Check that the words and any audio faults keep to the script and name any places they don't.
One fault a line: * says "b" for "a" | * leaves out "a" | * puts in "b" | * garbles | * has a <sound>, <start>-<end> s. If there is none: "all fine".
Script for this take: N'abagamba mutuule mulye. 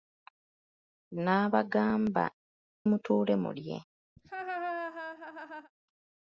* has a laugh, 4.2-5.7 s